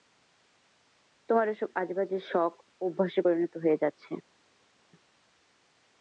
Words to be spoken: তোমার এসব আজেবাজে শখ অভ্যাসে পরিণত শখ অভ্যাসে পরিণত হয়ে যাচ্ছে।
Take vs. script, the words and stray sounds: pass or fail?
fail